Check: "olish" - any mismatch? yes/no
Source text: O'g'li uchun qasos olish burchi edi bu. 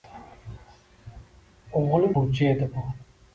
yes